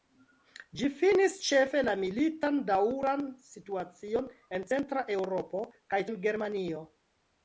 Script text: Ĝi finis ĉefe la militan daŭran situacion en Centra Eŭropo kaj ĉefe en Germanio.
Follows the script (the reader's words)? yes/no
no